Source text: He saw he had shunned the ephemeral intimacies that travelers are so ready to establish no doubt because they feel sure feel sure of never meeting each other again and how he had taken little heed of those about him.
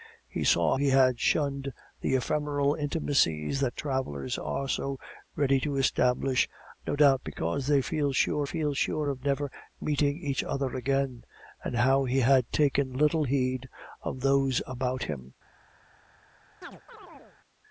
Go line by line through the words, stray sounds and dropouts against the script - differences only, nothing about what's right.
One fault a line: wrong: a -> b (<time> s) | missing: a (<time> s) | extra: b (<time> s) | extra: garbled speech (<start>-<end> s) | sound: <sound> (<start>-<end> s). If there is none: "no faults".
sound: chirp (16.6-17.4 s)